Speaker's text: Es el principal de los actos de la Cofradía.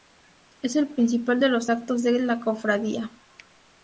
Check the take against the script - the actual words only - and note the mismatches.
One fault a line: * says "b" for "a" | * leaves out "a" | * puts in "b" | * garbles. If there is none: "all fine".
all fine